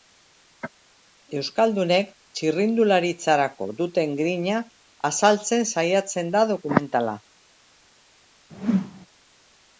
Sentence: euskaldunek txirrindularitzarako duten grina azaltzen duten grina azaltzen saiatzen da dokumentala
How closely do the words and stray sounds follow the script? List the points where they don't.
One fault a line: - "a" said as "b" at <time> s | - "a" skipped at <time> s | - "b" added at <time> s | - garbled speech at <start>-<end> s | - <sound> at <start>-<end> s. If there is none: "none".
- "duten grina azaltzen" skipped at 5.7 s
- whoosh at 8.5-9.1 s